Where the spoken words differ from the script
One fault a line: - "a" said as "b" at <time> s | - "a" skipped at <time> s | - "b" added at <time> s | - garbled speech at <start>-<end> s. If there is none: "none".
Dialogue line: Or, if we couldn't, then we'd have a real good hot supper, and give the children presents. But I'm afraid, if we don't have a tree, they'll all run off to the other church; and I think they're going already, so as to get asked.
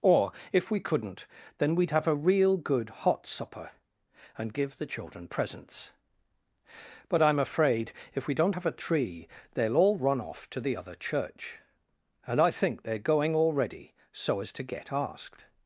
none